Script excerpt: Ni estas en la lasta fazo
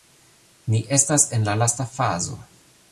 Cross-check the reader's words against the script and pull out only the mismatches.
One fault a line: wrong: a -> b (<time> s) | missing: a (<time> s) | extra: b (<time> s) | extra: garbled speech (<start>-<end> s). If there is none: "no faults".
no faults